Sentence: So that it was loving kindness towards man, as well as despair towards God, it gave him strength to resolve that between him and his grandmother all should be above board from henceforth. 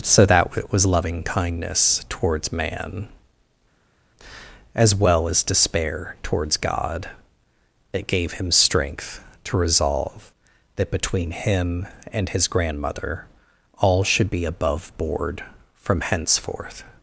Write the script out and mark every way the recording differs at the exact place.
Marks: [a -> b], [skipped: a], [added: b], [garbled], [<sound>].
So that it was loving kindness towards man, as well as despair towards God, it gave him strength to resolve that between him and his grandmother all should be above board from henceforth.